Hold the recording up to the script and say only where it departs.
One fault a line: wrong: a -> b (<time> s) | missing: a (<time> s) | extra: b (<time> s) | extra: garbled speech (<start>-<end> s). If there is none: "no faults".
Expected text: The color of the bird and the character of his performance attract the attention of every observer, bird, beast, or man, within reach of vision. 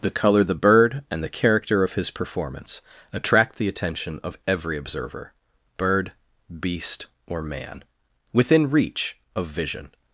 missing: of (0.4 s)